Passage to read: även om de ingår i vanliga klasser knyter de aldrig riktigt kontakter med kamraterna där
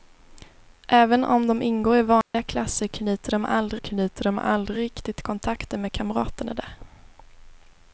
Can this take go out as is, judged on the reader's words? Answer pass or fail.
fail